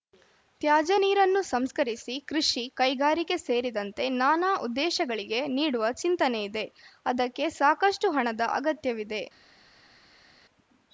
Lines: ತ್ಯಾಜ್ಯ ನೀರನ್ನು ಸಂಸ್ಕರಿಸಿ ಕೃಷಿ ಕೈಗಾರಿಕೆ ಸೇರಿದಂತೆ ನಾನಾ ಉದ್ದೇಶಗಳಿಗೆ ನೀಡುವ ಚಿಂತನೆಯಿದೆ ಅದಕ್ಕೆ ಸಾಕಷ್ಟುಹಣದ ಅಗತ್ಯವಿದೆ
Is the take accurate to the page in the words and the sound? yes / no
yes